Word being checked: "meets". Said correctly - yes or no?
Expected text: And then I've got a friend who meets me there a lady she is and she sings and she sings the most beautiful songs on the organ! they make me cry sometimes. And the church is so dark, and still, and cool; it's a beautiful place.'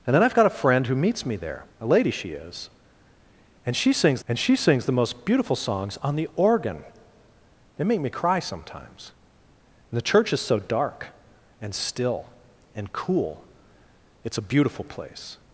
yes